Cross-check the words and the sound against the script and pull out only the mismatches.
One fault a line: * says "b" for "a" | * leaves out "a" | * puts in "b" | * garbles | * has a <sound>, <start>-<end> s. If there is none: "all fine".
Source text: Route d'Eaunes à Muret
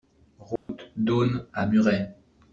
* has a dropout, 0.6-0.7 s